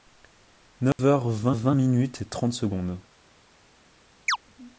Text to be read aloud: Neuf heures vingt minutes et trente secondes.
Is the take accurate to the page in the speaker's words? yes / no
no